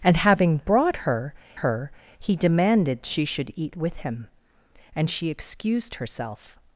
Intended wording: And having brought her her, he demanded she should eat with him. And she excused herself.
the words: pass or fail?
pass